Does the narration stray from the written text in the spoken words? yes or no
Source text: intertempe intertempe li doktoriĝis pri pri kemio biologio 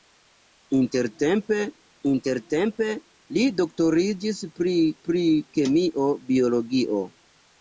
no